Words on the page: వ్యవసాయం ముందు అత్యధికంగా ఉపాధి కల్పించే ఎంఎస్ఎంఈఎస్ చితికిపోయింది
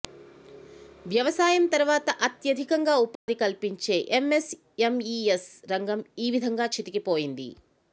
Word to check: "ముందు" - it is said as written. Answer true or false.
false